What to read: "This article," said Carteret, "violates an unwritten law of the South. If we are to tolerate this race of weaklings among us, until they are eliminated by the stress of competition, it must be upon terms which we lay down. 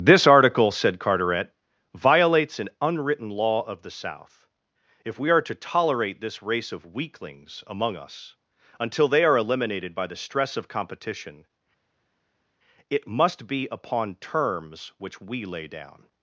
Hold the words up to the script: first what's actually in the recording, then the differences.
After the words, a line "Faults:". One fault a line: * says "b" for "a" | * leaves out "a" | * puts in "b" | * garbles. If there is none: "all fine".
"This article," said Carteret, "violates an unwritten law of the South. If we are to tolerate this race of weaklings among us, until they are eliminated by the stress of competition, it must be upon terms which we lay down.
Faults:
all fine